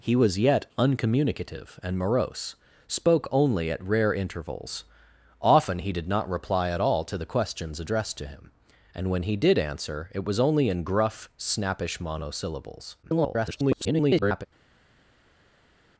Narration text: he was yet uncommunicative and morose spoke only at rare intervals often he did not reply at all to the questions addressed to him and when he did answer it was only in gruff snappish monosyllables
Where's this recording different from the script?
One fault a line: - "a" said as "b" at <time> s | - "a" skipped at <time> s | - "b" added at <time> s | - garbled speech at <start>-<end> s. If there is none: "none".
- garbled speech at 13.0-14.5 s